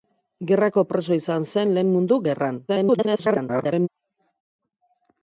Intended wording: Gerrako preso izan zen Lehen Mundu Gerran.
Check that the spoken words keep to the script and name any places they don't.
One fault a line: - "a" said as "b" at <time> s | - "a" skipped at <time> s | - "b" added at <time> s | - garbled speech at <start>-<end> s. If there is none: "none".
- garbled speech at 2.7-3.9 s